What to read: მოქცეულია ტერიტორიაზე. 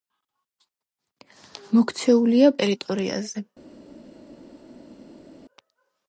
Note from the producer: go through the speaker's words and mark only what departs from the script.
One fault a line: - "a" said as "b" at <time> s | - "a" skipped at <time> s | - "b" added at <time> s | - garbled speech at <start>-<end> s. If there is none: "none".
none